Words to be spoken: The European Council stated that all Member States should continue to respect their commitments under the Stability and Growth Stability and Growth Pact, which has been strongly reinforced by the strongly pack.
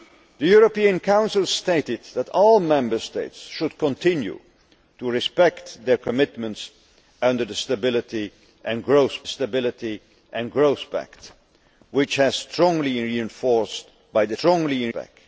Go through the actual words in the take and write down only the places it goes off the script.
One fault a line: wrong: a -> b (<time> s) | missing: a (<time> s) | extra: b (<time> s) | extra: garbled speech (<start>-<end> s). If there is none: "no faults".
no faults